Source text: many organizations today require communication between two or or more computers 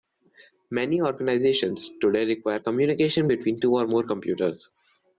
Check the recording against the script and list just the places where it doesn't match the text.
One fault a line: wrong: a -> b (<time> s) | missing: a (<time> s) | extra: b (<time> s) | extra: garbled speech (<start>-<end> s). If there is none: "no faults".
missing: or (3.9 s)